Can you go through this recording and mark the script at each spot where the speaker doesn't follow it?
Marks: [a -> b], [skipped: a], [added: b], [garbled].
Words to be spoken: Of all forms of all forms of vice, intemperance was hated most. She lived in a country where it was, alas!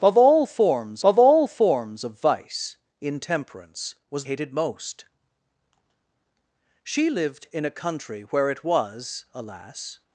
Of all forms of all forms of vice, intemperance was hated most. She lived in a country where it was, alas!